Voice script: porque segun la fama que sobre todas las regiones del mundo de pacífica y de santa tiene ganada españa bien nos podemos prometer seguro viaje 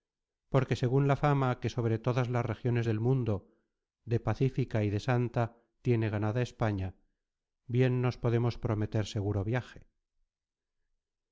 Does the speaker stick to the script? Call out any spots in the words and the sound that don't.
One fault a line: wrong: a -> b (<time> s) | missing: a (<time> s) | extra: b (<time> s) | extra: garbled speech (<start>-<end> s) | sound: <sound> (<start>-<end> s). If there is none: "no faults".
no faults